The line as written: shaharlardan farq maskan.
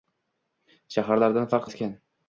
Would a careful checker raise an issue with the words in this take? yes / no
no